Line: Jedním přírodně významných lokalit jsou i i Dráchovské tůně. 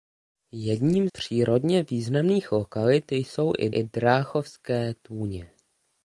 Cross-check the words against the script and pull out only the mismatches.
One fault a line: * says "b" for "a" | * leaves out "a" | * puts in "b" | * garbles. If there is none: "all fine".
all fine